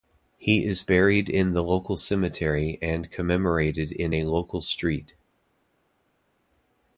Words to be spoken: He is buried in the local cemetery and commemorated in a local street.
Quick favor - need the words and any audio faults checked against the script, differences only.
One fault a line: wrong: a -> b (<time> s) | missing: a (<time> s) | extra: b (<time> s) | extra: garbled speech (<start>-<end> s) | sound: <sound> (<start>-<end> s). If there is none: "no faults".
no faults